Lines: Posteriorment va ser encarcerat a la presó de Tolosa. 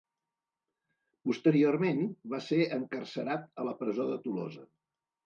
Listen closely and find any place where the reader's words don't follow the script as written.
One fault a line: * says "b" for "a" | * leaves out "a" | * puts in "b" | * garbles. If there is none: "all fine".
all fine